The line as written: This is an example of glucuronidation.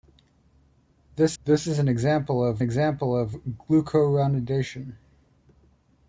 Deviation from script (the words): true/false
true